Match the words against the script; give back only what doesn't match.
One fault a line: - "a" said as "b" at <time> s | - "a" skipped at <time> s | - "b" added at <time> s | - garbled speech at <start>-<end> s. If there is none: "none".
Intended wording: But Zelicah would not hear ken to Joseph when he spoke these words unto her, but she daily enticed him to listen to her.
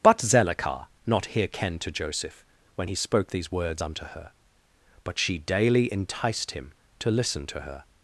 - "would" skipped at 0.9 s